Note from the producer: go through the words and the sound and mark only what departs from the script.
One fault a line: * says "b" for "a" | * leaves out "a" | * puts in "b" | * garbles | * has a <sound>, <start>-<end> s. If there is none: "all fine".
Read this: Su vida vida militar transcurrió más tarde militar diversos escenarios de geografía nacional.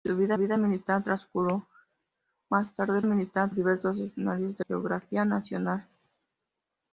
all fine